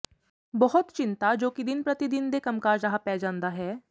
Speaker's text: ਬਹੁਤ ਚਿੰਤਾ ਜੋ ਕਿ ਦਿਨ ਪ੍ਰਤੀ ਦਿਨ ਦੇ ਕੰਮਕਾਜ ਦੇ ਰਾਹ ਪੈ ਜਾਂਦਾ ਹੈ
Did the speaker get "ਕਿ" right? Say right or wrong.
right